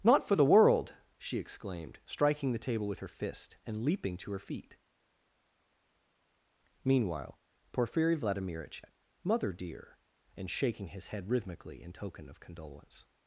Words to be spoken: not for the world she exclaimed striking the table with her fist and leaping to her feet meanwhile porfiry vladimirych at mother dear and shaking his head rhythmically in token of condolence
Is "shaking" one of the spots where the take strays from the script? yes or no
no